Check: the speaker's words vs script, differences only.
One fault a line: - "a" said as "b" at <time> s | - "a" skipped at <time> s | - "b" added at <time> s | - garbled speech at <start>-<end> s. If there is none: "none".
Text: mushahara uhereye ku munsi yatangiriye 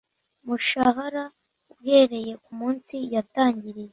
none